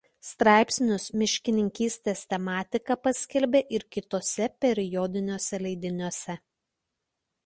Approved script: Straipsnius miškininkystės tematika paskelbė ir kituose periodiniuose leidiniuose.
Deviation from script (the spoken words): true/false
false